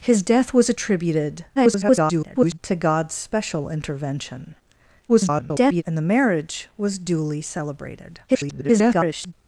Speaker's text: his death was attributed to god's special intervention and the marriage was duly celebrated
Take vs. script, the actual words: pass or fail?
fail